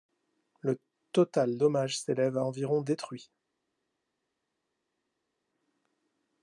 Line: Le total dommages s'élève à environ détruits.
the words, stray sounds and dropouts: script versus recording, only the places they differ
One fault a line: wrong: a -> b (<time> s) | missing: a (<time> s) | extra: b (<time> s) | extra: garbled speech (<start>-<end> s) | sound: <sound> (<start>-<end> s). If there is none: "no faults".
no faults